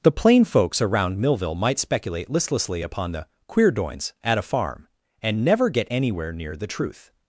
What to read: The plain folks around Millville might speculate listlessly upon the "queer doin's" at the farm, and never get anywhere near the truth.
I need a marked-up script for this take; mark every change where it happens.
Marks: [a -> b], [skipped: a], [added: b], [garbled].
The plain folks around Millville might speculate listlessly upon the "queer doin's" at [the -> a] farm, and never get anywhere near the truth.